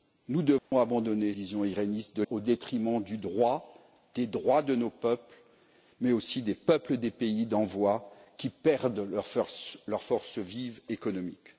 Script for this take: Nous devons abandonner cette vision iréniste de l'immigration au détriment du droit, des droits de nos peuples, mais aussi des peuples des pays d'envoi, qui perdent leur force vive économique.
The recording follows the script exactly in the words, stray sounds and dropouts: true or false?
false